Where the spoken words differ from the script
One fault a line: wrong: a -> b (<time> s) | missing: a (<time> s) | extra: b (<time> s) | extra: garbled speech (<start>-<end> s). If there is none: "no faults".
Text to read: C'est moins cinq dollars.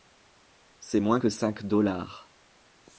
extra: que (1.2 s)